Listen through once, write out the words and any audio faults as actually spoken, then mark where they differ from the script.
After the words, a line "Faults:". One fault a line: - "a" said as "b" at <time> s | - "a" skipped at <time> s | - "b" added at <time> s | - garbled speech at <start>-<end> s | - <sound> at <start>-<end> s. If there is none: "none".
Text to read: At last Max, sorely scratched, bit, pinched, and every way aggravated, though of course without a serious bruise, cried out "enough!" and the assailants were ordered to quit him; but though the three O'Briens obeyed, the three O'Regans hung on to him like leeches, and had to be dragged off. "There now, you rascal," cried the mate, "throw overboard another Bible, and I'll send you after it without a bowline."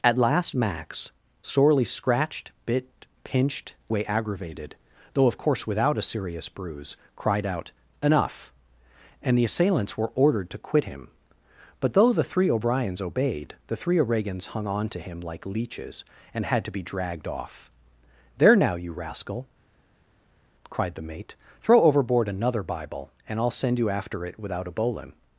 At last Max, sorely scratched, bit, pinched, way aggravated, though of course without a serious bruise, cried out "enough!" and the assailants were ordered to quit him; but though the three O'Briens obeyed, the three O'Regans hung on to him like leeches, and had to be dragged off. "There now, you rascal," cried the mate, "throw overboard another Bible, and I'll send you after it without a bowline."
Faults:
- "and every" skipped at 3.8 s